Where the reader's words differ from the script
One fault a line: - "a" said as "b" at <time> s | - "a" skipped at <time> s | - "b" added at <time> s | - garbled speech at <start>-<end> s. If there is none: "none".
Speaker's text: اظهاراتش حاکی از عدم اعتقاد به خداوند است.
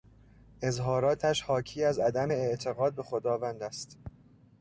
none